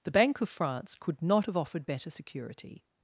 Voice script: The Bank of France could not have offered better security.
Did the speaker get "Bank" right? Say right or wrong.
right